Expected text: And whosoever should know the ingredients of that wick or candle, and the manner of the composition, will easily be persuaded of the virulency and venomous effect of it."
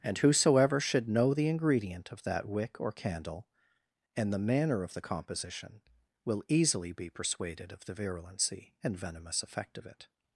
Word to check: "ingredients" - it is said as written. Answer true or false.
false